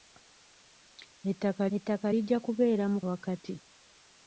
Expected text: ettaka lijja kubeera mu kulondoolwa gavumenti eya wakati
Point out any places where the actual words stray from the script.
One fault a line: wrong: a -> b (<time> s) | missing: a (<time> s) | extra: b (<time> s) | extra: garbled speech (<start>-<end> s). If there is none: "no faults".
extra: ettaka (1.8 s)
missing: kulondoolwa gavumenti eya (3.0 s)